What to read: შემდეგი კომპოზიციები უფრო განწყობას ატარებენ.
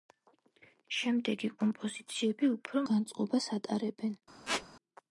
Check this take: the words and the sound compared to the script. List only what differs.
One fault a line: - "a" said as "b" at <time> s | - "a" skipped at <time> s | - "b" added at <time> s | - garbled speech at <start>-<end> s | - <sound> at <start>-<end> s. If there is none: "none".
- squeak at 4.5-4.7 s